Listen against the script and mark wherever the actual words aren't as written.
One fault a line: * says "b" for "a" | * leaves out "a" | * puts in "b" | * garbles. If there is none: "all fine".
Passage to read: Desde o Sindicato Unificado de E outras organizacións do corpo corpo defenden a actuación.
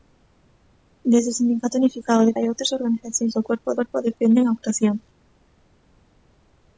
all fine